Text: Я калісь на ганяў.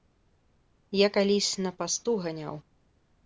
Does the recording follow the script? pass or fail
fail